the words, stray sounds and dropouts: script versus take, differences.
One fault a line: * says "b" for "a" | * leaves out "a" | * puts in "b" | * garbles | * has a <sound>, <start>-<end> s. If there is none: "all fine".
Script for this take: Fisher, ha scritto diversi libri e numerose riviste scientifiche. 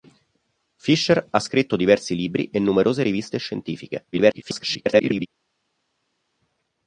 * garbles